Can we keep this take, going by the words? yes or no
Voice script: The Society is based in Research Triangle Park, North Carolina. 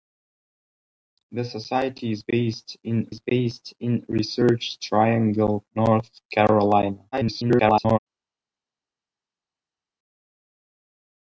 no